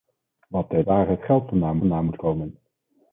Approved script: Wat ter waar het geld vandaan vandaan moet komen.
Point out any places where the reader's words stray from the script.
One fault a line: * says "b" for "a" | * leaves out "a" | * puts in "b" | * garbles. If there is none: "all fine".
all fine